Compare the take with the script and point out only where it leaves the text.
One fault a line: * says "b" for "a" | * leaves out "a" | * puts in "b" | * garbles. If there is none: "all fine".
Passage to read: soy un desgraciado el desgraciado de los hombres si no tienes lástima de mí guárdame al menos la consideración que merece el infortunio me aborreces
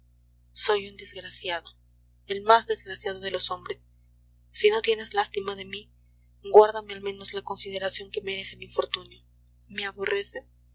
* puts in "más"